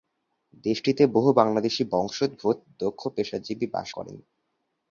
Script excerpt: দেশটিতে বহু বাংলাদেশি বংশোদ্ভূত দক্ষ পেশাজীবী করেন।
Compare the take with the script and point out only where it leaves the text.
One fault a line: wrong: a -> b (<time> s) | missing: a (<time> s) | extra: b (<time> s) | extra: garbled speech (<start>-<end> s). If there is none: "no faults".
extra: বাস (3.7 s)